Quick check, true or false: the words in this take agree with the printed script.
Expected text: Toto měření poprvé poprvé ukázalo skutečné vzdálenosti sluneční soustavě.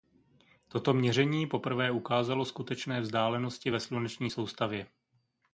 false